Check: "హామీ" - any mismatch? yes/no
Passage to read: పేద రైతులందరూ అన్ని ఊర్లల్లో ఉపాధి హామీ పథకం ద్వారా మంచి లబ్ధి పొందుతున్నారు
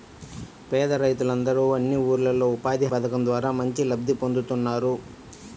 yes